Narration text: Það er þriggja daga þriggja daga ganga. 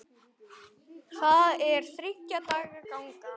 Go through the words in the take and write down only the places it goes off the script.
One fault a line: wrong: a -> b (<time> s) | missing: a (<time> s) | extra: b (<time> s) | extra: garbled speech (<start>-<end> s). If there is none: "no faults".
missing: þriggja daga (2.8 s)